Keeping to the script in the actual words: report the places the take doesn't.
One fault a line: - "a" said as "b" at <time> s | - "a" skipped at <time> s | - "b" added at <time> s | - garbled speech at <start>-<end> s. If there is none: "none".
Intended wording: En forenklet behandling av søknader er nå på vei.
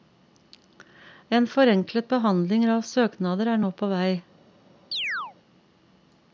none